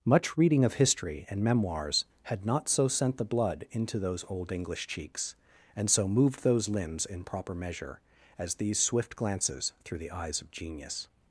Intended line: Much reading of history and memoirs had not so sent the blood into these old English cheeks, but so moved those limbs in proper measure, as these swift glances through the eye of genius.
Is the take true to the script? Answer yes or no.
no